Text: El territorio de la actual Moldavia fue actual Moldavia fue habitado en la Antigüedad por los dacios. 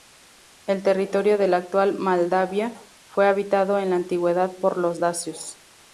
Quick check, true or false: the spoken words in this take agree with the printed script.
false